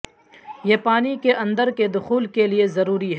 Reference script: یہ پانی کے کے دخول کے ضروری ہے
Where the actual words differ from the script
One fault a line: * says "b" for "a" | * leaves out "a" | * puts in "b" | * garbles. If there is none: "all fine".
* puts in "اندر"
* puts in "لئے"